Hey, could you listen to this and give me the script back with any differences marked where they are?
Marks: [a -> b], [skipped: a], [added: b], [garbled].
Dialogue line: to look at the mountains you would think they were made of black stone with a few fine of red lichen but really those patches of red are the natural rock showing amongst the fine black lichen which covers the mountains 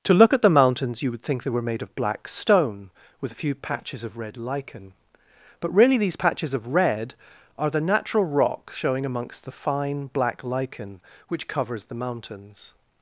to look at the mountains you would think they were made of black stone with a few [fine -> patches] of red lichen but really [those -> these] patches of red are the natural rock showing amongst the fine black lichen which covers the mountains